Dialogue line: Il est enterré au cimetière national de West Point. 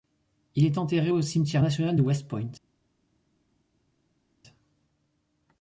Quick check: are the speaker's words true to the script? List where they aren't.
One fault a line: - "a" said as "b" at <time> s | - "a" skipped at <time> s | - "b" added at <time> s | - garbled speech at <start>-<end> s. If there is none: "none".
none